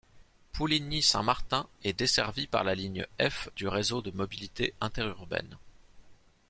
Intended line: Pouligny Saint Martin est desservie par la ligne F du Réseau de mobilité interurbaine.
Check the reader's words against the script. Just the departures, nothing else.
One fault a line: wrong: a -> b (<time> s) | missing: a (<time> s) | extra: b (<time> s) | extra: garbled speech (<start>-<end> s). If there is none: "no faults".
no faults